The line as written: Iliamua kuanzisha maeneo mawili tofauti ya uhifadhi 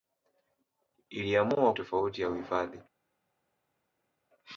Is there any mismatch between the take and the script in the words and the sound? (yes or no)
yes